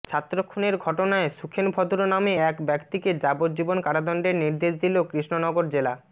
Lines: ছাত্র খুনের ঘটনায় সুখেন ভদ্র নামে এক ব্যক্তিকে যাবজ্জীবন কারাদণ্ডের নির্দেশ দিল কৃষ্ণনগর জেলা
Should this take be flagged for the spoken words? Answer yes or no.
no